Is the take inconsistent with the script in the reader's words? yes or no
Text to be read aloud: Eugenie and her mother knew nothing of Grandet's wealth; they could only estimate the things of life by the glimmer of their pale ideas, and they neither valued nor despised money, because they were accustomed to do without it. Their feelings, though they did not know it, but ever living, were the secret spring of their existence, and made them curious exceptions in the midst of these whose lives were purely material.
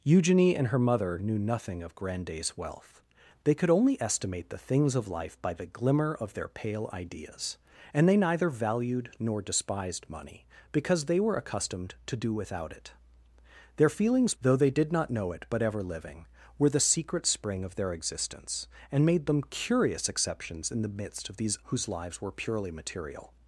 no